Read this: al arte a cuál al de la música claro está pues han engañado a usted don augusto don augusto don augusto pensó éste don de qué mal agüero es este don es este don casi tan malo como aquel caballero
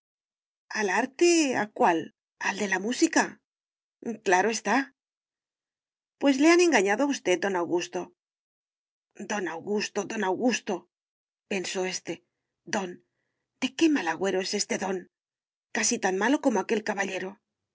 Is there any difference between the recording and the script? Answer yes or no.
yes